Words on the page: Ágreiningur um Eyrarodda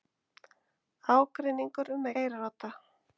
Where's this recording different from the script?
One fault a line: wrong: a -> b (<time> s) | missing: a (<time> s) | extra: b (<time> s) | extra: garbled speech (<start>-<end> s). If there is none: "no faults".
no faults